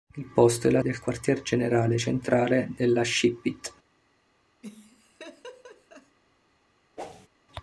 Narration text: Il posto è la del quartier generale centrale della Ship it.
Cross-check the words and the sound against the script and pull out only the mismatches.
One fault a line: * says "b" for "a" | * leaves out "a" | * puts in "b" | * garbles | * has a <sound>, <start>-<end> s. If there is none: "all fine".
* has a laugh, 4.6-6.2 s
* has a whoosh, 7.0-7.3 s